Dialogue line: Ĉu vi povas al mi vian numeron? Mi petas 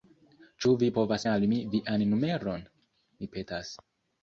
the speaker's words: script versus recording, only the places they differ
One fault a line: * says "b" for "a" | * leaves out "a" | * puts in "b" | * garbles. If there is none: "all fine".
all fine